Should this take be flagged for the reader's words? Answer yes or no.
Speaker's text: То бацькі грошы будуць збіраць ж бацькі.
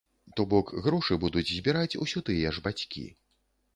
yes